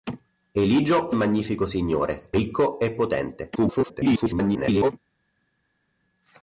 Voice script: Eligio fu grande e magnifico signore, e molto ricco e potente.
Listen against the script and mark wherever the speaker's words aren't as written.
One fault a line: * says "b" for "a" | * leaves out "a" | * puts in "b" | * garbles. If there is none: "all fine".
* leaves out "fu grande"
* leaves out "e molto"
* garbles